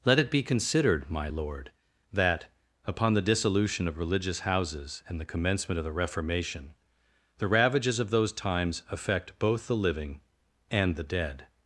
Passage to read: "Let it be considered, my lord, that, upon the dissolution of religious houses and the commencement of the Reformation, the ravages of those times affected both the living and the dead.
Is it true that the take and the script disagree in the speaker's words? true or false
true